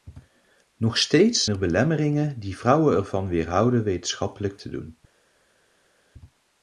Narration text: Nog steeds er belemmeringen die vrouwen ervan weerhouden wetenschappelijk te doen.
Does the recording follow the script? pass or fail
pass